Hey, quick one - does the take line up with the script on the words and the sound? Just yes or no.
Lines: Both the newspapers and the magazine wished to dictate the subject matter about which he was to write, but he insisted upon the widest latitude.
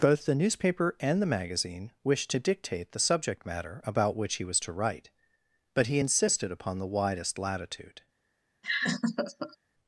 no